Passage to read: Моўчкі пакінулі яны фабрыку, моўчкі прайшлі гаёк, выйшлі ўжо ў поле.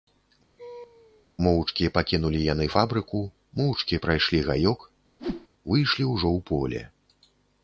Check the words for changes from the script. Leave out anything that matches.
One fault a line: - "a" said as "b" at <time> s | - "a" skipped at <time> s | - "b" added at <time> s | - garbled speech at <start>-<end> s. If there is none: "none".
none